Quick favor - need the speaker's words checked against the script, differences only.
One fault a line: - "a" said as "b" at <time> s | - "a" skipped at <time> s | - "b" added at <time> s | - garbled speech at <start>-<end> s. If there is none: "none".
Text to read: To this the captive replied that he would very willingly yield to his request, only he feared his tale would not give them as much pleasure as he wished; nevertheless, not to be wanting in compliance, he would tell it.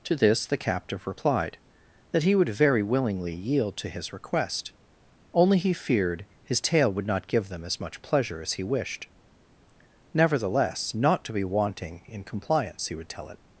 none